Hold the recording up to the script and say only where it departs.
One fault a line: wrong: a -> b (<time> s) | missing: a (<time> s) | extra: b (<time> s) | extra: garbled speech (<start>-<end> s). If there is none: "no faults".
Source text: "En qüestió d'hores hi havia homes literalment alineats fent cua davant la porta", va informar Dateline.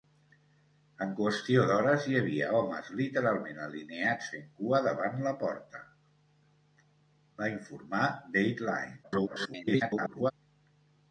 extra: garbled speech (9.0-10.3 s)